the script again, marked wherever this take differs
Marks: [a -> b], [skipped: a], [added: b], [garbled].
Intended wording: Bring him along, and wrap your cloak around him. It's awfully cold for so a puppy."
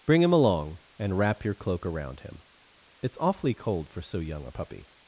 Bring him along, and wrap your cloak around him. It's awfully cold for so [added: young] a puppy."